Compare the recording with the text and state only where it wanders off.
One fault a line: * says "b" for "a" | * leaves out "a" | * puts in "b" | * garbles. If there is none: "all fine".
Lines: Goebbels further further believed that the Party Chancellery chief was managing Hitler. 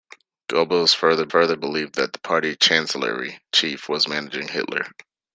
all fine